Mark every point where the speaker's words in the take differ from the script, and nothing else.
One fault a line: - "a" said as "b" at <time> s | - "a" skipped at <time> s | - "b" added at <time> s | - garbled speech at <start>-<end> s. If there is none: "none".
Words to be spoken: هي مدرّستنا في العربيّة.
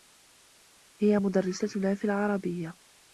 none